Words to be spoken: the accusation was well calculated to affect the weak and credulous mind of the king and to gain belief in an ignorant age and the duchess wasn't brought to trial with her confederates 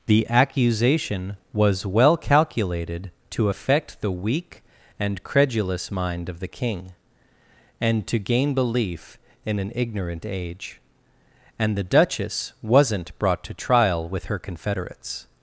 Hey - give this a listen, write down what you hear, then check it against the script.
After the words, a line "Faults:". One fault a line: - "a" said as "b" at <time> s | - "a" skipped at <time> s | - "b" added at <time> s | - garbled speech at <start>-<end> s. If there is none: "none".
the accusation was well calculated to affect the weak and credulous mind of the king and to gain belief in an ignorant age and the duchess wasn't brought to trial with her confederates
Faults:
none